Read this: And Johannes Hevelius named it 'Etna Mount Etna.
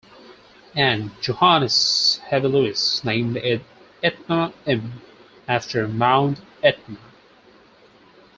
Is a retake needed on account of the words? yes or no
yes